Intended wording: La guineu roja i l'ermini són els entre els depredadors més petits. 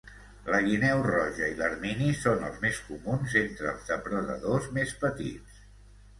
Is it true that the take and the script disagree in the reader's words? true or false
true